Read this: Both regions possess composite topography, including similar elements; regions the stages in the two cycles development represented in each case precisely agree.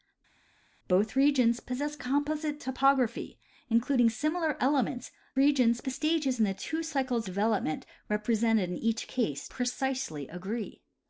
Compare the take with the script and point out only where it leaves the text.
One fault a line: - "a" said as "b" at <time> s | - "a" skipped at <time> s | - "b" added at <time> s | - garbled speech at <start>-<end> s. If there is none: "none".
none